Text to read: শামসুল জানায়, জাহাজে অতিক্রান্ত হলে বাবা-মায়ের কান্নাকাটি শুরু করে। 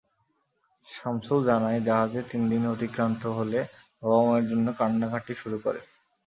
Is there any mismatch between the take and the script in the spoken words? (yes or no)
yes